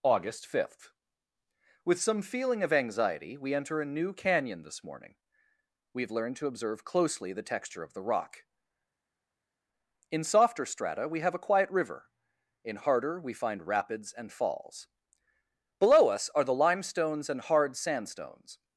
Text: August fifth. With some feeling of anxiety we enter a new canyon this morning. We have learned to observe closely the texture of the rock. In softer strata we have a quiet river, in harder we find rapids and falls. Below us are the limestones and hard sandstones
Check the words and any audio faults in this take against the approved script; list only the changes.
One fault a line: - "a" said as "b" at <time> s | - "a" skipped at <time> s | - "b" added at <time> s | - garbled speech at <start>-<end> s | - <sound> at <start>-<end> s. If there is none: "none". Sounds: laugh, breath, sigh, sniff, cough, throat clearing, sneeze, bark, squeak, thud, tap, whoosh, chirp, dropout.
none